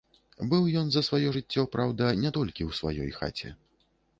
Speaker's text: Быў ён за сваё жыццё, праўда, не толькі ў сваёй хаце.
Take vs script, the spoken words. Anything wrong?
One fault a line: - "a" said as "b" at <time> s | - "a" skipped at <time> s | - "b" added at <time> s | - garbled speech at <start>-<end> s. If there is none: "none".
none